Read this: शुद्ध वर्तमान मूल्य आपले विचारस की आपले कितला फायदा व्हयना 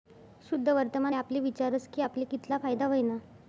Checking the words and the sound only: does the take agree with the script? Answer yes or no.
no